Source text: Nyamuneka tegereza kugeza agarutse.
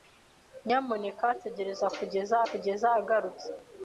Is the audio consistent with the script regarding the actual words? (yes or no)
no